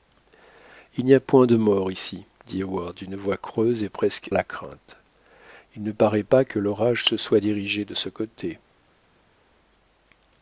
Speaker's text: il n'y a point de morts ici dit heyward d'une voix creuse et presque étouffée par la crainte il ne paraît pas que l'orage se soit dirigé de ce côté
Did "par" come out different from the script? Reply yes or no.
yes